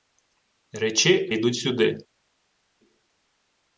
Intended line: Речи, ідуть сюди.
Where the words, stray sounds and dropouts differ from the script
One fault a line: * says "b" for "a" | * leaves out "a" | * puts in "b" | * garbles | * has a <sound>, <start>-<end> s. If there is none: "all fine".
all fine